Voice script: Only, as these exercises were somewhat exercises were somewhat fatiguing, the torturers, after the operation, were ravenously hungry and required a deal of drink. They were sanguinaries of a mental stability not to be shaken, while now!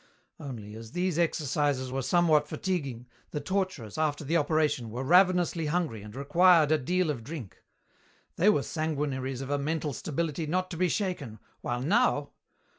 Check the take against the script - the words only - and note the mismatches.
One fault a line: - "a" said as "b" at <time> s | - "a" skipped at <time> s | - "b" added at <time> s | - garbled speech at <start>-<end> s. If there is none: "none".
- "exercises were somewhat" skipped at 2.5 s